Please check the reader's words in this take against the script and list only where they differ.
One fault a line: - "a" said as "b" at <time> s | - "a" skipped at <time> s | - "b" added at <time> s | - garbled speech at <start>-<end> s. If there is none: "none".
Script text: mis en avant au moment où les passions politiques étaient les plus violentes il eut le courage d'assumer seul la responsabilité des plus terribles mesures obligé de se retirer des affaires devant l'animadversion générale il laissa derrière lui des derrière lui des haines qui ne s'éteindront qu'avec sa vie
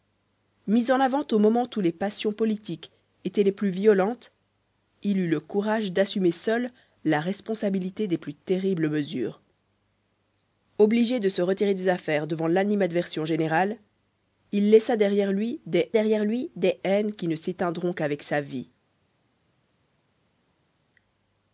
none